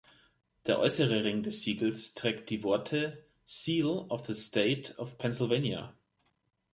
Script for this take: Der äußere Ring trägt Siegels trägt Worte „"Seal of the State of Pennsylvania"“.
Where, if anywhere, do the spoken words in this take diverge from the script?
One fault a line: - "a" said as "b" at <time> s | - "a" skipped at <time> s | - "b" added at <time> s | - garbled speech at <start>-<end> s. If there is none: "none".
- "trägt" said as "des" at 1.4 s
- "die" added at 2.5 s